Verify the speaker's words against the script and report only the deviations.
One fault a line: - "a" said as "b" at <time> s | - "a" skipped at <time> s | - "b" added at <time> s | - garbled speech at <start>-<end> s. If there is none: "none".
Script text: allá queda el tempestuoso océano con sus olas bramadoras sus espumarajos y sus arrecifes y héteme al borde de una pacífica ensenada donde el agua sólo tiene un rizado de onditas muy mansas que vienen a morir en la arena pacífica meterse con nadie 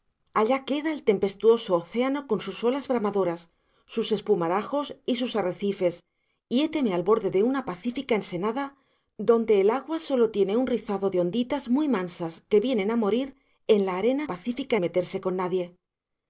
none